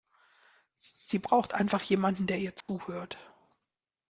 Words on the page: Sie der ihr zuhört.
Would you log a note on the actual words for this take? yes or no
yes